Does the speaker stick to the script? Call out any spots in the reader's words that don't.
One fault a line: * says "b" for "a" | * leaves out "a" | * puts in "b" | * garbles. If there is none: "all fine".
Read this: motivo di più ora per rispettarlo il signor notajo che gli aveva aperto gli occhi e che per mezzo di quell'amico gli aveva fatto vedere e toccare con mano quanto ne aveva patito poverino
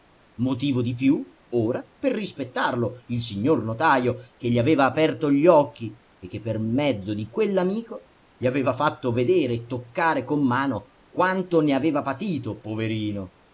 all fine